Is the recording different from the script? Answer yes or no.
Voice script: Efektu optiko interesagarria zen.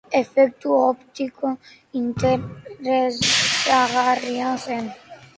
no